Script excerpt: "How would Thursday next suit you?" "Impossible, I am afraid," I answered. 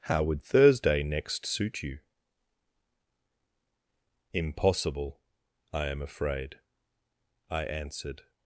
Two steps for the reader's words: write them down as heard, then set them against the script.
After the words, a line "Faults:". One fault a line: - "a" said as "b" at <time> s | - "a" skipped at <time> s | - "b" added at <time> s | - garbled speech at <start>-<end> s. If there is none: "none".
"How would Thursday next suit you?" "Impossible, I am afraid," I answered.
Faults:
none